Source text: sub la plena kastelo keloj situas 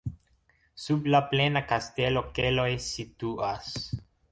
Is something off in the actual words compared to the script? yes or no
no